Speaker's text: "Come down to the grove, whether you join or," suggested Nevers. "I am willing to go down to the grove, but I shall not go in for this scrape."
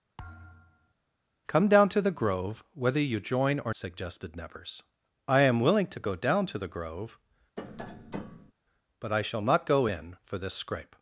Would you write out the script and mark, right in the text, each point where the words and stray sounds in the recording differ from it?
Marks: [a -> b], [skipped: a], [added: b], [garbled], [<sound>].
[thud] "Come down to the grove, whether you join or," suggested Nevers. "I am willing to go down to the grove, [tap] but I shall not go in for this scrape."